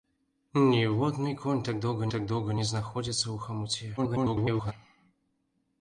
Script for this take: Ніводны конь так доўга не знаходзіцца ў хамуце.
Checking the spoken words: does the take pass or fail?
fail